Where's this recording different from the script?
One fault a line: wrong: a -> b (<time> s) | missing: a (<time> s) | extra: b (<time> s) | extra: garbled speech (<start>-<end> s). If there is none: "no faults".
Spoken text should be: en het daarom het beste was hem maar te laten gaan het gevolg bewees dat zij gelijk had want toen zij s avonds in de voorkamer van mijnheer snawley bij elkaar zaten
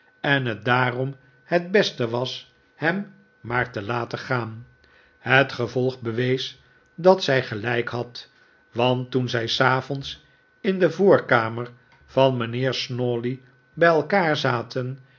no faults